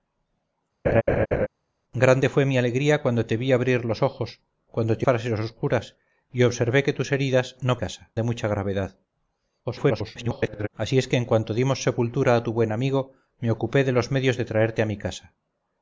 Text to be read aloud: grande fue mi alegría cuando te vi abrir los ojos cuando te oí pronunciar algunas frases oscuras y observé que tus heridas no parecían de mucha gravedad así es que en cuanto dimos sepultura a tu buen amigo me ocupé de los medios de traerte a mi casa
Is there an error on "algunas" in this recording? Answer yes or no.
yes